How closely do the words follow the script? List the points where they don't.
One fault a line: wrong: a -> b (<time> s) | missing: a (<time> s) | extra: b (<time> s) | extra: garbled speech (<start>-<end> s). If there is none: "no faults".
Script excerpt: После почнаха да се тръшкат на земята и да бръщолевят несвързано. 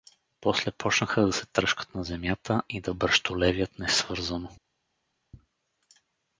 no faults